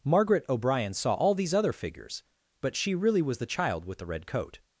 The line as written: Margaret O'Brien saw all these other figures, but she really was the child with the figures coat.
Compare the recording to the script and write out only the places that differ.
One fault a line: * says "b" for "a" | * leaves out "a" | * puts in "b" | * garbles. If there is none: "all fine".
* says "red" for "figures"